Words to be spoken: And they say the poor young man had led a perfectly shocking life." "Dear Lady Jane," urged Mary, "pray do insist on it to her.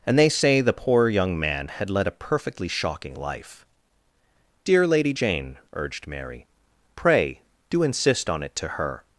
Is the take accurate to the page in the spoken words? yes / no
yes